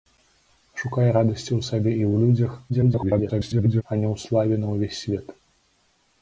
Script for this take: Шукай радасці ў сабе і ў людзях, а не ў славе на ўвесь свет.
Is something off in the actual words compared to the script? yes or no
yes